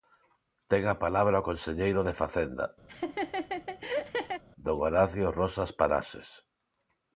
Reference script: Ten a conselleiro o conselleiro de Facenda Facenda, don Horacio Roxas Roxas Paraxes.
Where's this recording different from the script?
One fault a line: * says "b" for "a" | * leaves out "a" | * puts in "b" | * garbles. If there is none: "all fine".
* says "palabra" for "conselleiro"
* leaves out "Facenda"
* leaves out "Roxas"